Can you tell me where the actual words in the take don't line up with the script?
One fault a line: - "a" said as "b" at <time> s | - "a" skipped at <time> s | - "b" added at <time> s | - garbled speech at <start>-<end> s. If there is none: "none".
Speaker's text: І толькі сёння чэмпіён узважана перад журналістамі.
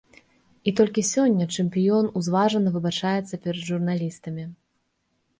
- "выбачаецца" added at 2.8 s